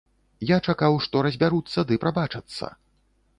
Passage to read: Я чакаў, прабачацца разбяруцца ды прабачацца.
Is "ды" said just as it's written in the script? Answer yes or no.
yes